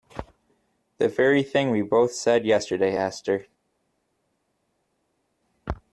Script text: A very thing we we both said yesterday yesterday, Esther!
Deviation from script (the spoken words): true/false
true